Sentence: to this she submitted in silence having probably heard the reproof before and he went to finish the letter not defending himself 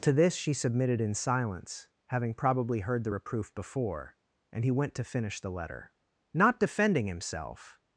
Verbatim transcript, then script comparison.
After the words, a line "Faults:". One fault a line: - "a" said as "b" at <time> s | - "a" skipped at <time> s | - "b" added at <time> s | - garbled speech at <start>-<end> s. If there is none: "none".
to this she submitted in silence having probably heard the reproof before and he went to finish the letter not defending himself
Faults:
none